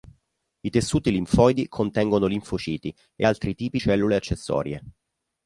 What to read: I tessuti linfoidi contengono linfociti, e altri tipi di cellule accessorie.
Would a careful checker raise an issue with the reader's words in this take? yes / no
yes